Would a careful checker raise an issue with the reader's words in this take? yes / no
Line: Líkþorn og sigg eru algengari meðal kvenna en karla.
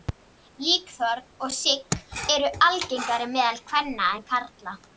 no